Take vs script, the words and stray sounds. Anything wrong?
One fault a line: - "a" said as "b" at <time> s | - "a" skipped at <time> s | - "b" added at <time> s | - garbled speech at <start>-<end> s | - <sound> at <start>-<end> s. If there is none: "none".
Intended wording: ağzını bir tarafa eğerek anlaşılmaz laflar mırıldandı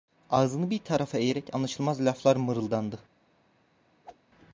- whoosh at 4.0-4.2 s